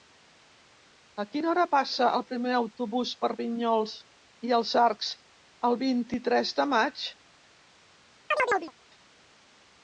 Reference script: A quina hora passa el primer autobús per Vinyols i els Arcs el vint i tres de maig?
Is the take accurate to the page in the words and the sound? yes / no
no